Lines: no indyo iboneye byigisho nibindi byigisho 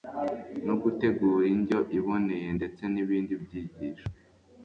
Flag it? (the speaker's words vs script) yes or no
yes